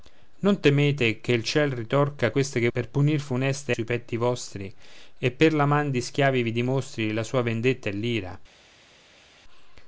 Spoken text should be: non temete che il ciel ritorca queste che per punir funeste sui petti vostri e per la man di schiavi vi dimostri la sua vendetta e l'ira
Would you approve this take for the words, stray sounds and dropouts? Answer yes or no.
yes